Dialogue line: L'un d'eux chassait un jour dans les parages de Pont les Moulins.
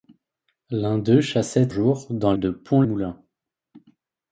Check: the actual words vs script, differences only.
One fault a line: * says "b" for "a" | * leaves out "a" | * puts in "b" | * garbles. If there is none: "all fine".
* leaves out "un"
* leaves out "les parages"
* leaves out "les"